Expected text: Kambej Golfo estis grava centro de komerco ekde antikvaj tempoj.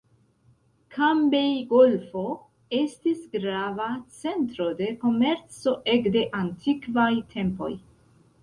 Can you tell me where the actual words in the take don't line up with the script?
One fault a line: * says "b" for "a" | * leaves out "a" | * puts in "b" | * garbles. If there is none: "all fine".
all fine